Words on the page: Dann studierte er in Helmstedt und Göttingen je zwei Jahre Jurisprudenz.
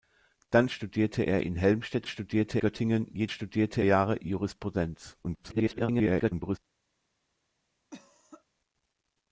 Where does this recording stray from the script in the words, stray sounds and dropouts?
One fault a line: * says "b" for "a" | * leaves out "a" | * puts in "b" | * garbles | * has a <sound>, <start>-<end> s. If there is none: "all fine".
* says "studierte" for "und"
* says "studierte" for "zwei"
* garbles
* has a cough, 7.9-8.4 s